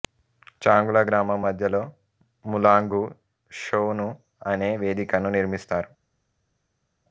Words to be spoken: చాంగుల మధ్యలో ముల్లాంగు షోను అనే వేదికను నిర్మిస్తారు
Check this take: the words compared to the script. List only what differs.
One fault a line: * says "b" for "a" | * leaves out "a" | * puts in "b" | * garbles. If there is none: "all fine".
* puts in "గ్రామం"